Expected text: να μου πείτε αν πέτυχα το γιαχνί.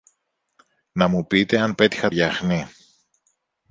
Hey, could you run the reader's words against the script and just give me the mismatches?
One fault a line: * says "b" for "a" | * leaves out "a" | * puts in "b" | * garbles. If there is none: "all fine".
* leaves out "το"